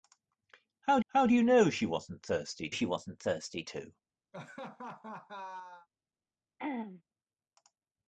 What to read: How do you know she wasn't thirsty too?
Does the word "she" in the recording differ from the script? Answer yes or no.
no